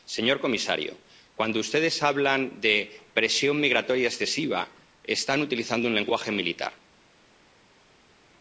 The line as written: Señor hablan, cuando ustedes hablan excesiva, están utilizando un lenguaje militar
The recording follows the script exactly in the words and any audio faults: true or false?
false